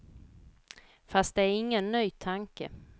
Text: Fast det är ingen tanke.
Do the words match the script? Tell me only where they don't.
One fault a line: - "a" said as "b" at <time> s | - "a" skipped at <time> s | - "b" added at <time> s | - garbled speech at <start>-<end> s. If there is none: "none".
- "ny" added at 1.9 s